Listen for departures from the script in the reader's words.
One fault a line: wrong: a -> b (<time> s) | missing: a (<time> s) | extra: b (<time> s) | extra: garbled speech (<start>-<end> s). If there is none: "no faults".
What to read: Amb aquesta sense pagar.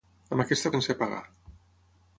no faults